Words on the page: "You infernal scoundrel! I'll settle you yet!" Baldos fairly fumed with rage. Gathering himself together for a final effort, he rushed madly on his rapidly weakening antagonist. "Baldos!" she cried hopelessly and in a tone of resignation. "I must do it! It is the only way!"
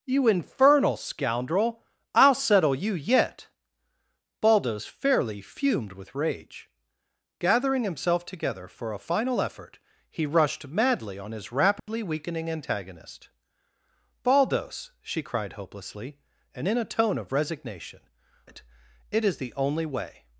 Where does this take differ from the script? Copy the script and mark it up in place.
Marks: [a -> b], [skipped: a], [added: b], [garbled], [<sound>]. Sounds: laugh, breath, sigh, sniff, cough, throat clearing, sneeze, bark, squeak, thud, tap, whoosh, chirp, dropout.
"You infernal scoundrel! I'll settle you yet!" Baldos fairly fumed with rage. Gathering himself together for a final effort, he rushed madly on his rapidly [dropout] weakening antagonist. "Baldos!" she cried hopelessly and in a tone of resignation. [skipped: "I must do] it! It is the only way!"